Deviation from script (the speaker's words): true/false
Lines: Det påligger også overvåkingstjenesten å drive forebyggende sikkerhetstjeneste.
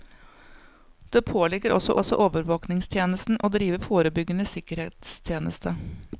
true